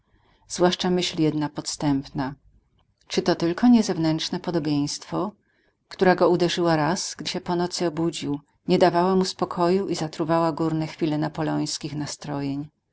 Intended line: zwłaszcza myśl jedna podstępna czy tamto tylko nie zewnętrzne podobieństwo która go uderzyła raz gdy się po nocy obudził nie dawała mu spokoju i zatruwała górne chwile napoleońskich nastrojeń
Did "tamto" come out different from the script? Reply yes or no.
yes